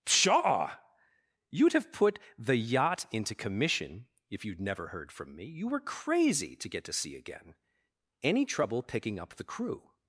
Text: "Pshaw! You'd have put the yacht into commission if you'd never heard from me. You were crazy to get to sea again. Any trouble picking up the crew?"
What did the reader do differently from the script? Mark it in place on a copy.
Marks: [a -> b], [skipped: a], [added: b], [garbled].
"Pshaw! You'd have put the yacht into commission if you'd never heard from me. You were crazy to get to sea again. Any trouble picking up the crew?"